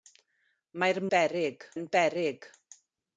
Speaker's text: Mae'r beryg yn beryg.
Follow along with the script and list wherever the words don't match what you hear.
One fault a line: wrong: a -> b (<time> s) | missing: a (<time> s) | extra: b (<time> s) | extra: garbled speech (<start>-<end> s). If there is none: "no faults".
no faults